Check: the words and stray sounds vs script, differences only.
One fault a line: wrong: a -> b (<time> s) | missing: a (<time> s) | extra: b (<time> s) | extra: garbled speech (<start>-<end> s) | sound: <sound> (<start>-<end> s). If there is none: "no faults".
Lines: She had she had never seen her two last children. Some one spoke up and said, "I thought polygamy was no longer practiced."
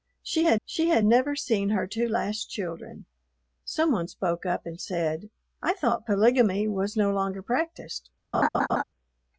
sound: laugh (8.3-8.8 s)